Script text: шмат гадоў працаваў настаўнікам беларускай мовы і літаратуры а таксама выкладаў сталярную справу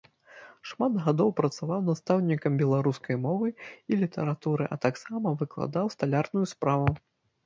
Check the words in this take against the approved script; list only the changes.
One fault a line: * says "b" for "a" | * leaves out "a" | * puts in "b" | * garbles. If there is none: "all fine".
all fine